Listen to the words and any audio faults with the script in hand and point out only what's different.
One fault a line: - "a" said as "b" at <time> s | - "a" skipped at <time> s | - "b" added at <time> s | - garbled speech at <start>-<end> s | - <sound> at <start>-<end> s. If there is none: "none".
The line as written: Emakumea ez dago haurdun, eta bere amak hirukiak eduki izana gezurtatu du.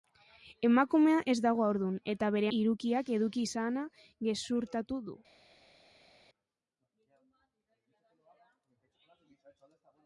- "amak" skipped at 2.5 s